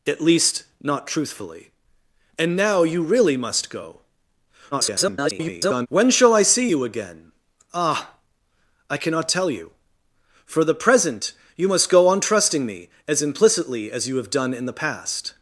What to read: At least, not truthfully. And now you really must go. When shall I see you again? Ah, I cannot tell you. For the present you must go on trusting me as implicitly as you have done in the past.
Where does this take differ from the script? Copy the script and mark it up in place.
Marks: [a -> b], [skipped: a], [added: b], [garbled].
At least, not truthfully. And now you really must go. [garbled] When shall I see you again? Ah, I cannot tell you. For the present you must go on trusting me as implicitly as you have done in the past.